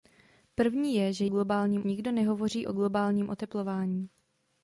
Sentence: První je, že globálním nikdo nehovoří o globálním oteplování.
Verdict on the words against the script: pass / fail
pass